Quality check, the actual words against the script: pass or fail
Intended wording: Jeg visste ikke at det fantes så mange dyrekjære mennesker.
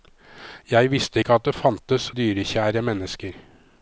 fail